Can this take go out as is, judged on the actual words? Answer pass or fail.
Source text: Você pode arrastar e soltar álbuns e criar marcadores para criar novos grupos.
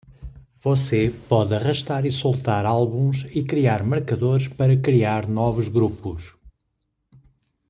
pass